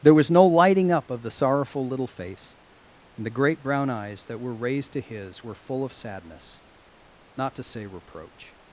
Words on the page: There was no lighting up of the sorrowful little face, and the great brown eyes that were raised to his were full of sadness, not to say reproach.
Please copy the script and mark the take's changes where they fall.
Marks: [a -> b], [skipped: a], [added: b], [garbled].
There was no lighting up of the sorrowful little face, and the great brown eyes that were raised to his were full of sadness, not to say reproach.